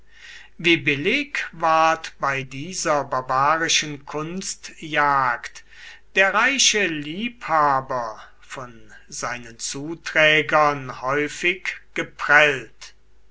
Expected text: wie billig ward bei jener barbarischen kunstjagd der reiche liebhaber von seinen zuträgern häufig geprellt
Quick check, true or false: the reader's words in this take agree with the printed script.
false